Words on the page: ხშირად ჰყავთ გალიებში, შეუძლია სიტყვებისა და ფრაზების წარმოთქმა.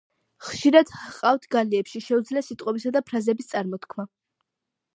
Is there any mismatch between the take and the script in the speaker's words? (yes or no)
no